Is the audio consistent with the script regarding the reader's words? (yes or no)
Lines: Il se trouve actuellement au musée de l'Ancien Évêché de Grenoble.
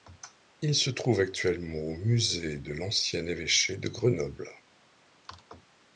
yes